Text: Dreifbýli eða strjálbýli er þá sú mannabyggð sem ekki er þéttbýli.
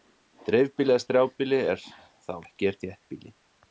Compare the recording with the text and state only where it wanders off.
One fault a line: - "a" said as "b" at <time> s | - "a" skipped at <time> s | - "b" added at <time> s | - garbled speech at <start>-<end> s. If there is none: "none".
- "sú mannabyggð sem" skipped at 2.3 s